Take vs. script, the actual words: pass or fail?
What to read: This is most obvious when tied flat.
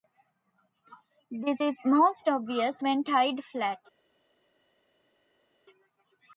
pass